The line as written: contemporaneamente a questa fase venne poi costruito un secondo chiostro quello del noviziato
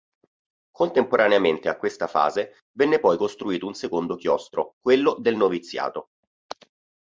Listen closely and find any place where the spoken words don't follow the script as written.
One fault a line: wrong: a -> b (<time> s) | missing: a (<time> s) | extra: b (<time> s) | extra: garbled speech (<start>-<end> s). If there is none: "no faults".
no faults